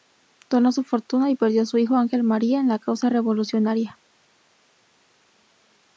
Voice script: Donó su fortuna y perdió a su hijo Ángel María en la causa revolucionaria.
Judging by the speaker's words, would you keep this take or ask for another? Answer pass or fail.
pass